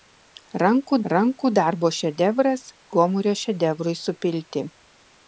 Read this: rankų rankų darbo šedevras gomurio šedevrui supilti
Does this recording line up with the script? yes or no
yes